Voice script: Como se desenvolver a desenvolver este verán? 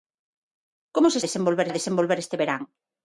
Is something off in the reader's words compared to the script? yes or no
no